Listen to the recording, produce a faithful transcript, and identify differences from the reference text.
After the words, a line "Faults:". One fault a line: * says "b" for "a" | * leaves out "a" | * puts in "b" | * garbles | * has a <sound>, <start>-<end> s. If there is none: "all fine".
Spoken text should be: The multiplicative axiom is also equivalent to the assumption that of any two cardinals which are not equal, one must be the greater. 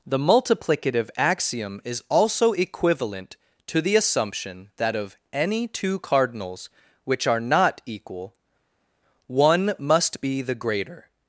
The multiplicative axiom is also equivalent to the assumption that of any two cardinals which are not equal, one must be the greater.
Faults:
all fine